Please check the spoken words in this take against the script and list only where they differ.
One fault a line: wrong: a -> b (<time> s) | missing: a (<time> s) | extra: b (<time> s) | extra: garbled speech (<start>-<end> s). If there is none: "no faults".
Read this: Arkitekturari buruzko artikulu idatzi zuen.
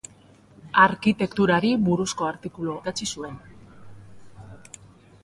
no faults